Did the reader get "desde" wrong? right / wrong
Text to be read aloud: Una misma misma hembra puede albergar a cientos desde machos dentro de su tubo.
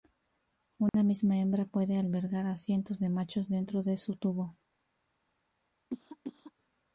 wrong